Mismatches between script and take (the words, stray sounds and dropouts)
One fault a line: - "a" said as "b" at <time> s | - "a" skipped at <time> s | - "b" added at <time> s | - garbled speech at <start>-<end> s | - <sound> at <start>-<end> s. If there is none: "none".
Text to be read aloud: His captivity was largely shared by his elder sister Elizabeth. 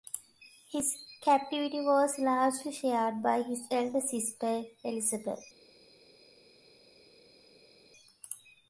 none